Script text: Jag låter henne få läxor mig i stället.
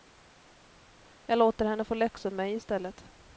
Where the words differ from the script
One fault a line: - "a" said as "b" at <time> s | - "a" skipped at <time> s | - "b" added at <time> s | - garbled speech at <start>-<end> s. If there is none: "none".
none